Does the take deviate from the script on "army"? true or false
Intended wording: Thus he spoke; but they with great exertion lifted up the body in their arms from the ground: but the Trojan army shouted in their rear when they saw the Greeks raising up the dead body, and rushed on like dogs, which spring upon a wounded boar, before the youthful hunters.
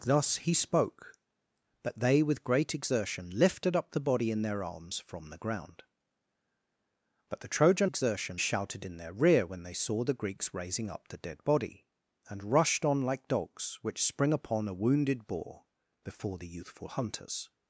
true